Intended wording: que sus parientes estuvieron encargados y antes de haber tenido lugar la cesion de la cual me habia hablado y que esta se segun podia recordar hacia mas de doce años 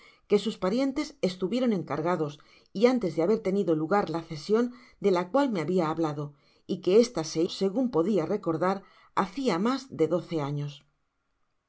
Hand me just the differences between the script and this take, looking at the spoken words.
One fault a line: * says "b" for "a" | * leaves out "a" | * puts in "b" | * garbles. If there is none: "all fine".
all fine